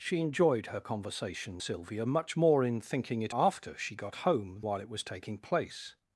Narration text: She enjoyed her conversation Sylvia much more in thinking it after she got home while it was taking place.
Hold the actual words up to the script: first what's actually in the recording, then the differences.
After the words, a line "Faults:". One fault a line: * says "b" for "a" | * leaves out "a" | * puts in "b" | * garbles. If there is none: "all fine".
She enjoyed her conversation Sylvia much more in thinking it after she got home while it was taking place.
Faults:
all fine